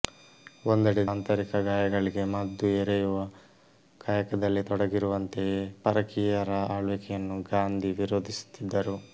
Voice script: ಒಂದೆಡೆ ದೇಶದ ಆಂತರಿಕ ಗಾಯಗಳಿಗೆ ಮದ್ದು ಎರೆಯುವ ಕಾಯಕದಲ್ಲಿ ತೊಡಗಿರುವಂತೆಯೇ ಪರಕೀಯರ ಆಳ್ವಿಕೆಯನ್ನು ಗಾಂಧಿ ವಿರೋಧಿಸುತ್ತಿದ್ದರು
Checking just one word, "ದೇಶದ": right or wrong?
wrong